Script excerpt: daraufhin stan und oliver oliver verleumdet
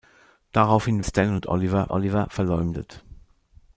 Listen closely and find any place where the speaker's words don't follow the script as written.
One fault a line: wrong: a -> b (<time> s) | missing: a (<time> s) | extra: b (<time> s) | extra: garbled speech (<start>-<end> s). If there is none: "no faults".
no faults